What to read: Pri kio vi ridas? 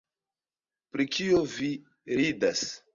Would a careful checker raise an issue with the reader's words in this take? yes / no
no